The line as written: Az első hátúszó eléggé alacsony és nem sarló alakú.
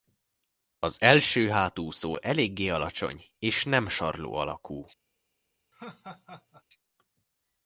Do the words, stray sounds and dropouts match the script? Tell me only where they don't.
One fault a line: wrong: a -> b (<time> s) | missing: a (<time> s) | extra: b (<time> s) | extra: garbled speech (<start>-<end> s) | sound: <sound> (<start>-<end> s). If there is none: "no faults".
sound: laugh (5.7-6.6 s)